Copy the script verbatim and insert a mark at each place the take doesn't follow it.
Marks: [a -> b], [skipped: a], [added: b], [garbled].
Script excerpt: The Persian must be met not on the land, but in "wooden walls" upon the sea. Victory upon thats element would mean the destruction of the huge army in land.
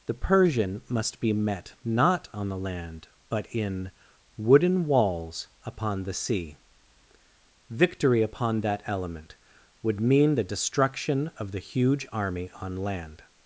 The Persian must be met not on the land, but in "wooden walls" upon the sea. Victory upon [thats -> that] element would mean the destruction of the huge army [in -> on] land.